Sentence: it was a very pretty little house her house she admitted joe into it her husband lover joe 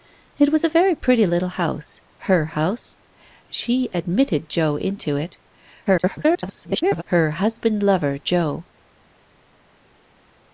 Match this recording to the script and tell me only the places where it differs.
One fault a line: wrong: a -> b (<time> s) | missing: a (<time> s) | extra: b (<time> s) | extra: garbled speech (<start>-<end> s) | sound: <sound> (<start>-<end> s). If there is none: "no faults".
extra: garbled speech (5.9-7.0 s)